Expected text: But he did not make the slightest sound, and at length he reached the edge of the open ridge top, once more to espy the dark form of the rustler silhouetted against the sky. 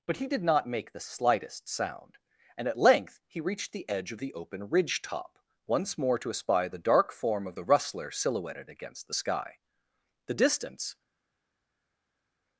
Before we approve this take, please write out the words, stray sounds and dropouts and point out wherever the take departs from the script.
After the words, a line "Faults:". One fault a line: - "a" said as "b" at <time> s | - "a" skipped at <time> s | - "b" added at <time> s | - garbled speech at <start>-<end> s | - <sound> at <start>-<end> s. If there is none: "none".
But he did not make the slightest sound, and at length he reached the edge of the open ridge top, once more to espy the dark form of the rustler silhouetted against the sky. The distance
Faults:
- "The distance" added at 10.3 s